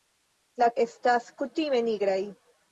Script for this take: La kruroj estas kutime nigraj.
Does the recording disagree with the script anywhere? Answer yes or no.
yes